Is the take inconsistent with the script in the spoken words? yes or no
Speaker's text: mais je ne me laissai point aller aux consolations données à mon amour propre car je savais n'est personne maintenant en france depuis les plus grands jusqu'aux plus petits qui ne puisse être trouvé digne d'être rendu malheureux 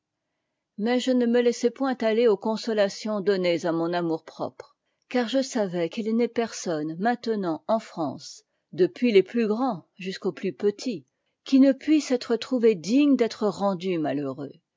yes